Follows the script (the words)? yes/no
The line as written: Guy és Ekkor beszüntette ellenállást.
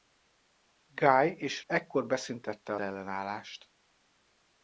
yes